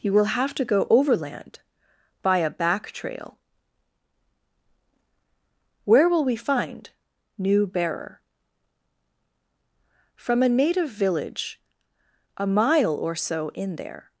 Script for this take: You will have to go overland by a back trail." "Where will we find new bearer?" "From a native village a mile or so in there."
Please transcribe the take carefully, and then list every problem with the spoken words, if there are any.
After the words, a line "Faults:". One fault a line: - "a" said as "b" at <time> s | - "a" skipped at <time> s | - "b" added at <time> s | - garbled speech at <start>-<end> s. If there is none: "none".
You will have to go overland by a back trail." "Where will we find new bearer?" "From a native village a mile or so in there."
Faults:
none